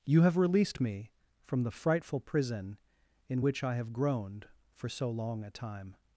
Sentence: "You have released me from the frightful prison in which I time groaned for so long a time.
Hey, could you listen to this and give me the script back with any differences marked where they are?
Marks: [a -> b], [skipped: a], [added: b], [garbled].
"You have released me from the frightful prison in which I [time -> have] groaned for so long a time.